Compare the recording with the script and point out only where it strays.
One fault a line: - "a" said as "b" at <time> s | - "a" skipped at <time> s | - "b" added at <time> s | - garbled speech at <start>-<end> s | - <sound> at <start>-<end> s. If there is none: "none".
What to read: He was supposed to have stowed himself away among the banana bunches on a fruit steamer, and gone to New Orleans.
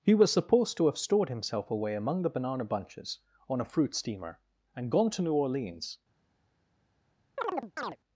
- "stowed" said as "stored" at 1.0 s
- chirp at 7.4-8.0 s